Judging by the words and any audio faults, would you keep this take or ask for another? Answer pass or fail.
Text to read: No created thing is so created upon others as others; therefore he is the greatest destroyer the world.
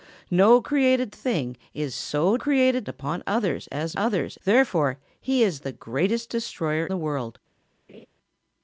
fail